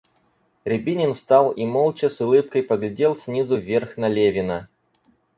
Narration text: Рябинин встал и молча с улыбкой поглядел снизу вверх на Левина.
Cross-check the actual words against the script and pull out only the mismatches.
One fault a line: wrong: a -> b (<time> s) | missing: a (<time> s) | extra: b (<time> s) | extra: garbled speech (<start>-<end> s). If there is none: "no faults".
no faults